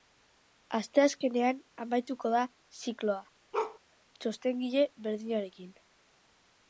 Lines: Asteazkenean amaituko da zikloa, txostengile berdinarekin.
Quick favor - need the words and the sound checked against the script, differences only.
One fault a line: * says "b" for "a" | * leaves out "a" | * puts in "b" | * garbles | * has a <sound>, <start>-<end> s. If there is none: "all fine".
* has a bark, 3.5-3.8 s